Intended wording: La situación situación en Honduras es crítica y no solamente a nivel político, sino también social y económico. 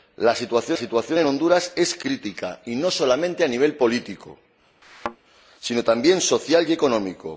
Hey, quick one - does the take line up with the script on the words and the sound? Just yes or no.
no